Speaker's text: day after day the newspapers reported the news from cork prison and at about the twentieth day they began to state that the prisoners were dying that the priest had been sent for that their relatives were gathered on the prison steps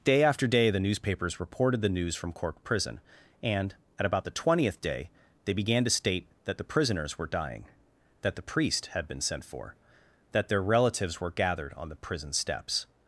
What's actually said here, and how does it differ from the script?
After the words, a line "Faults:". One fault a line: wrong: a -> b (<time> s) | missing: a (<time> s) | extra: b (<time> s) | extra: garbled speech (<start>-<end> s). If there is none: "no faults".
day after day the newspapers reported the news from cork prison and at about the twentieth day they began to state that the prisoners were dying that the priest had been sent for that their relatives were gathered on the prison steps
Faults:
no faults